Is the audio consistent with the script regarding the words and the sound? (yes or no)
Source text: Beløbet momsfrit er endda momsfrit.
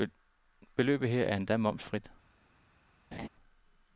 no